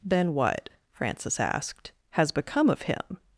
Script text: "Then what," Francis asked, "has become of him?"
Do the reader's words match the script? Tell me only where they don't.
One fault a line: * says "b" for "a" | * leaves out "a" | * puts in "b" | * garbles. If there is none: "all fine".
all fine